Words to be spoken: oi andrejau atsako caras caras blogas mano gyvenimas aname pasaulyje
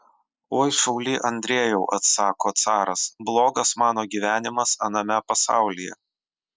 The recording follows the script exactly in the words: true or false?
false